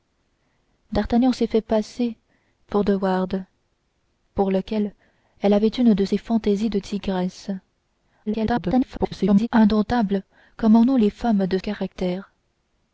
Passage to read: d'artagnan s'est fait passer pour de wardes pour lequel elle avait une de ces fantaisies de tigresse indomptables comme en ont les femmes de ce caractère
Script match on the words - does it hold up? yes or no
no